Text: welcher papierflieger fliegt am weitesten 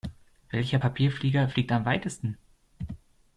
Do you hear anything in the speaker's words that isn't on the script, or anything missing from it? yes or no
no